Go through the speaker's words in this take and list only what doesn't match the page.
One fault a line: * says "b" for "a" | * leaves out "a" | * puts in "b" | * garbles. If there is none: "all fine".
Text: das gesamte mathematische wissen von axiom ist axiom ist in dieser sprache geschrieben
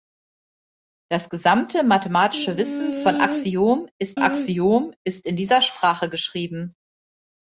all fine